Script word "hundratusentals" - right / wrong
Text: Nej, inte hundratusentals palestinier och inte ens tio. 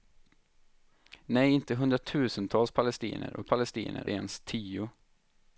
right